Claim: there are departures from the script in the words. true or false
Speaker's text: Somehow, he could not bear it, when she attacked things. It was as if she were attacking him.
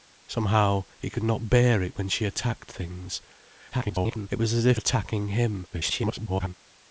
true